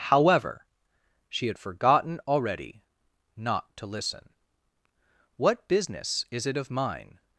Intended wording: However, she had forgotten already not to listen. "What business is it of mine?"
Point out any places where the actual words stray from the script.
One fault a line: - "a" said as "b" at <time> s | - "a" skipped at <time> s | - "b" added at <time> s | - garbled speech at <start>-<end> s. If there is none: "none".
none